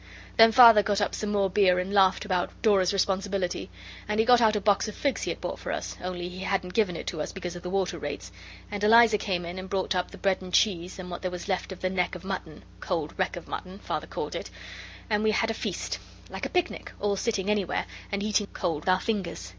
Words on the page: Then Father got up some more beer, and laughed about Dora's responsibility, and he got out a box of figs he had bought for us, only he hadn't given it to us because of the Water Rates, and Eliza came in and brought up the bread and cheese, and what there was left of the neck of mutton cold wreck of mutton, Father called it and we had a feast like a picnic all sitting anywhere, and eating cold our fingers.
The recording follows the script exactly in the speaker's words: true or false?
true